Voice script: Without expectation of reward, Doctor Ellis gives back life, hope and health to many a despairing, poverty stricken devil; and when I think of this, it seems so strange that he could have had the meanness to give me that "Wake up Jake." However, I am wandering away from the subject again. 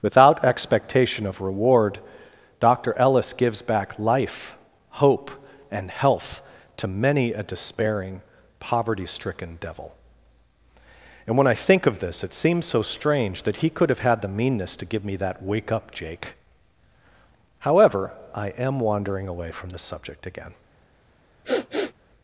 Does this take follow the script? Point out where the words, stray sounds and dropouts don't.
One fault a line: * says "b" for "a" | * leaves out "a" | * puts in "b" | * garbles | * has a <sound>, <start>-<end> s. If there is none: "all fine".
* has a sniff, 21.4-21.9 s